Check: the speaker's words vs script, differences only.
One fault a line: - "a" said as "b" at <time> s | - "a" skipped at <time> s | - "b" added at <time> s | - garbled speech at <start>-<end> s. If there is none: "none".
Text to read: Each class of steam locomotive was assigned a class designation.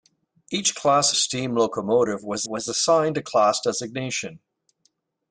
- "of" skipped at 1.1 s
- "was" added at 2.5 s